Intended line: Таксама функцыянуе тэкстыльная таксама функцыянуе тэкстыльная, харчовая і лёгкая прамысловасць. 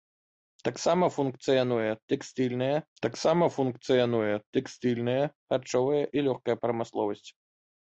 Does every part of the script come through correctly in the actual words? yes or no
yes